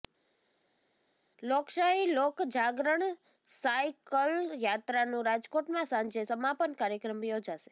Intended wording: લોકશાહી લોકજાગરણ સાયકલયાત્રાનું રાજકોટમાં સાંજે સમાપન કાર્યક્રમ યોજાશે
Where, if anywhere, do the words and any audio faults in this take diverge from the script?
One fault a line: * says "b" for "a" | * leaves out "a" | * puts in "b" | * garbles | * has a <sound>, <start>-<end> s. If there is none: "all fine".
all fine